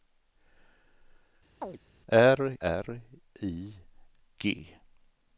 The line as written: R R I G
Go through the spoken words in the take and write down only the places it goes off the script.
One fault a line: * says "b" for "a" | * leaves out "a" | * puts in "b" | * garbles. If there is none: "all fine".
all fine